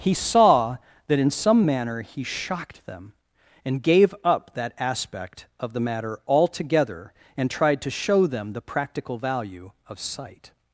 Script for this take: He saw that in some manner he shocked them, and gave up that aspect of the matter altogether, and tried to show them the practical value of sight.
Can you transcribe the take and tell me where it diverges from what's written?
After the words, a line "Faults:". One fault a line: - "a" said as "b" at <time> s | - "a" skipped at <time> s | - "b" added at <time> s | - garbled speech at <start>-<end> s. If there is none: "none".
He saw that in some manner he shocked them, and gave up that aspect of the matter altogether, and tried to show them the practical value of sight.
Faults:
none